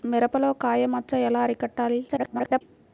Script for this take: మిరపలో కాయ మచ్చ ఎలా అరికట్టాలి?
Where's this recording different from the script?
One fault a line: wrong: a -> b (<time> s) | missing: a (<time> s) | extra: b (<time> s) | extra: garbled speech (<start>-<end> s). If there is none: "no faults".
extra: garbled speech (2.1-2.6 s)